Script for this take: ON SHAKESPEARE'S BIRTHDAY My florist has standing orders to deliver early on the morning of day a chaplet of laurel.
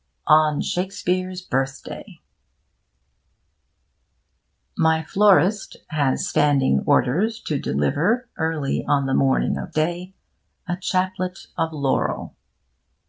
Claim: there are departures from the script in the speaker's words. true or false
false